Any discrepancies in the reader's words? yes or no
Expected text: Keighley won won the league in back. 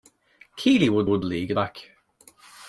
no